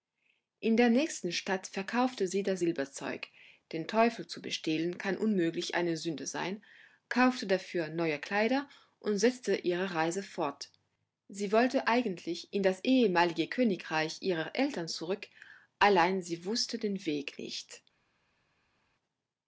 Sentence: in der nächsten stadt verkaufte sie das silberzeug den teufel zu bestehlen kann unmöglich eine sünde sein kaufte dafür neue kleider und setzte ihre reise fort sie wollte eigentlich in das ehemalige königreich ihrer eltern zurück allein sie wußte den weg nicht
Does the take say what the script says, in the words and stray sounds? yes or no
yes